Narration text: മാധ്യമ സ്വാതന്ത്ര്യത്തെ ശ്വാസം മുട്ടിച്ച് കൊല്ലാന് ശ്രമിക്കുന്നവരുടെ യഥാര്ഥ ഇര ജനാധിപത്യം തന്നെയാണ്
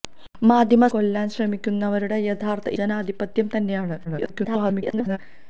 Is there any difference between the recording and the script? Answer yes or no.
yes